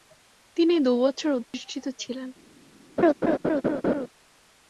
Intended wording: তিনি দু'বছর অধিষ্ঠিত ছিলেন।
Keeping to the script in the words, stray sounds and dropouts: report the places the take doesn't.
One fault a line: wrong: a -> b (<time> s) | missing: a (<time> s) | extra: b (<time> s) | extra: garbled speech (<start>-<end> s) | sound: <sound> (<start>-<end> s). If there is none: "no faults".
sound: dropout (1.4-1.5 s)
sound: laugh (3.0-4.1 s)